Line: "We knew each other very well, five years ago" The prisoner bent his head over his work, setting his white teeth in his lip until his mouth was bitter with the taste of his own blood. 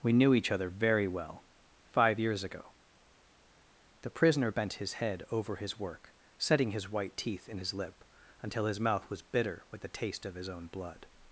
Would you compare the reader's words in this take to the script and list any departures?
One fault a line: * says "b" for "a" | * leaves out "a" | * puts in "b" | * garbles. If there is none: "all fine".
all fine